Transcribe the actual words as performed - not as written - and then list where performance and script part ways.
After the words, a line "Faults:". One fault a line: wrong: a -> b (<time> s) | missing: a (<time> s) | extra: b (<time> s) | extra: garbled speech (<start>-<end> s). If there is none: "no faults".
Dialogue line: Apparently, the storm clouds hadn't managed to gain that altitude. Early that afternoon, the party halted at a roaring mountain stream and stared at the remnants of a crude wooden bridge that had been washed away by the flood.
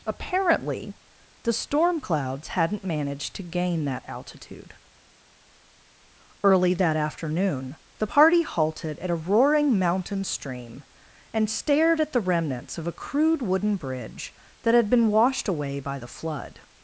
Apparently, the storm clouds hadn't managed to gain that altitude. Early that afternoon, the party halted at a roaring mountain stream and stared at the remnants of a crude wooden bridge that had been washed away by the flood.
Faults:
no faults